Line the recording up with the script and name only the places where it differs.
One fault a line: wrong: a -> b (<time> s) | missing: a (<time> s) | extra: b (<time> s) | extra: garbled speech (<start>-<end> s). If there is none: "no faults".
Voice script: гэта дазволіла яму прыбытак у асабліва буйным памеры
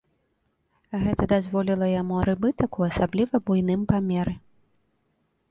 no faults